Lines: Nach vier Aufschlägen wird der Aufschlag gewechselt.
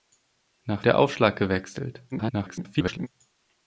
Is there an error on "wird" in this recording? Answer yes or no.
yes